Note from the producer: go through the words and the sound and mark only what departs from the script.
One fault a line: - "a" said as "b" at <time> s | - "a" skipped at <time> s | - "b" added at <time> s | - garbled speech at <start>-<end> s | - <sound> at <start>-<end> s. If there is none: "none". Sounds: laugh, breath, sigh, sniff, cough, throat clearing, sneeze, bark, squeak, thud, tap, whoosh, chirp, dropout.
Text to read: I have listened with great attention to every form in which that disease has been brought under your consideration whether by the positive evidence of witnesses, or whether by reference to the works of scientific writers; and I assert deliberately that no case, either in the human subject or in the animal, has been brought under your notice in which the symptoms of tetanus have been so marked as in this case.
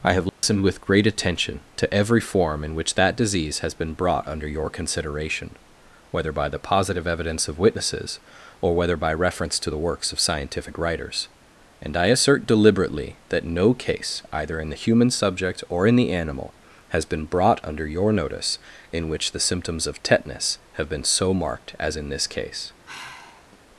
- dropout at 0.3-0.4 s
- sigh at 22.8-23.6 s